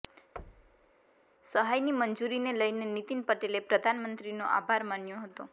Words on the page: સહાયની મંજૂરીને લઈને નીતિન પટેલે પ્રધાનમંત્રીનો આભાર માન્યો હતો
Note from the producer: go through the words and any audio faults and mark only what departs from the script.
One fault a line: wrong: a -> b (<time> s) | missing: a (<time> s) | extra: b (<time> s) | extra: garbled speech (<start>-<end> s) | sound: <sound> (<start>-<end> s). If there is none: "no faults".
sound: thud (0.4-0.9 s)